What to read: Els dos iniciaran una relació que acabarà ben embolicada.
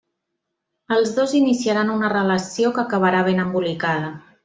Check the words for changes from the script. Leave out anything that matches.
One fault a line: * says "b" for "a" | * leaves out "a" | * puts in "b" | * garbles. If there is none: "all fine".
all fine